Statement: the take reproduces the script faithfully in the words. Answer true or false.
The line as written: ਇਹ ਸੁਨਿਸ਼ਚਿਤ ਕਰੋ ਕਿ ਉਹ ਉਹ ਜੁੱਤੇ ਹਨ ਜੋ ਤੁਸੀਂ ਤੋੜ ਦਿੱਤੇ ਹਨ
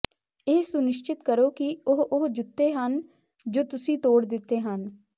true